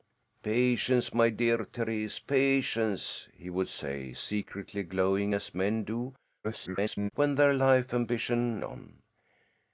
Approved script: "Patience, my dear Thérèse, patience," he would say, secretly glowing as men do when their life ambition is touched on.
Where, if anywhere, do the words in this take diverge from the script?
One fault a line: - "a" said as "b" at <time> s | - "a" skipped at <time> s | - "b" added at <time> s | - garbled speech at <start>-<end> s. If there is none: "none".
- garbled speech at 6.4-7.1 s
- "is touched" skipped at 8.6 s